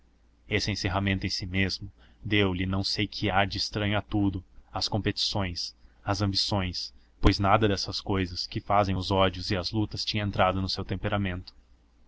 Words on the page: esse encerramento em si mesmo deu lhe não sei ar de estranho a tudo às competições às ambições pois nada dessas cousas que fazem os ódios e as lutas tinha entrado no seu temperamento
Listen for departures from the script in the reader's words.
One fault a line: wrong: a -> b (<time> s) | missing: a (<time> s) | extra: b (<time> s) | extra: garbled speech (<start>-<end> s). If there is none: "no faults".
extra: que (3.0 s)